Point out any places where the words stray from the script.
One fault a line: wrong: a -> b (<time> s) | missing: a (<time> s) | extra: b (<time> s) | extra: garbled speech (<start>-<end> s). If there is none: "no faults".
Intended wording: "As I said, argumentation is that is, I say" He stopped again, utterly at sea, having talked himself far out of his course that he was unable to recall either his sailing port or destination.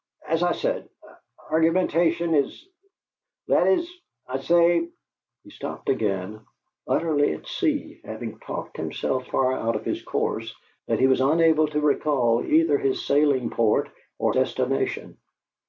no faults